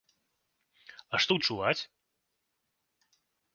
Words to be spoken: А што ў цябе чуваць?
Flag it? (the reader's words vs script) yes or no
yes